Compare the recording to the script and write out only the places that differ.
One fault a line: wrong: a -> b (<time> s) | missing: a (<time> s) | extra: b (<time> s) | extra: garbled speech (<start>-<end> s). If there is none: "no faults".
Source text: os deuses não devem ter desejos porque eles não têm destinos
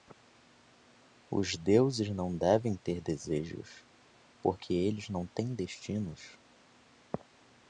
no faults